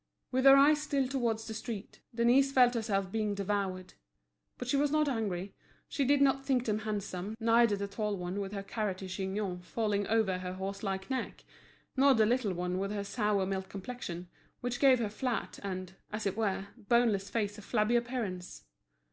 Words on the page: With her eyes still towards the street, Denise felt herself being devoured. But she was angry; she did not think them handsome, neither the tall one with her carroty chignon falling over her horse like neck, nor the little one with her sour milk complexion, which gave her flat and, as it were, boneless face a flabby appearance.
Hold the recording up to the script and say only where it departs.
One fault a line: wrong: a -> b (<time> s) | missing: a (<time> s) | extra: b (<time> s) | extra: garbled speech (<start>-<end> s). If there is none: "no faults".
extra: not (4.9 s)